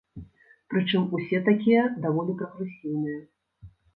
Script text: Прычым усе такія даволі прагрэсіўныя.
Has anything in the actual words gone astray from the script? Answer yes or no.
no